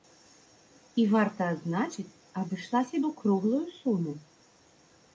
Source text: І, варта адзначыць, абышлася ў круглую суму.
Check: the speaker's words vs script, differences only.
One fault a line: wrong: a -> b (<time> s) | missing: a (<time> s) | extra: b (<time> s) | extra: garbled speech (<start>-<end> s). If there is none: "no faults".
no faults